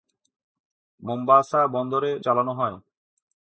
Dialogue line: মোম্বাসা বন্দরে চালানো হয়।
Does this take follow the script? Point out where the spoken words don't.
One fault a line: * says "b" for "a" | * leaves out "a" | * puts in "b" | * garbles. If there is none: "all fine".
all fine